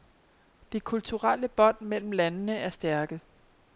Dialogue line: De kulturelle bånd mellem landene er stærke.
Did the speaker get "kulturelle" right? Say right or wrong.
right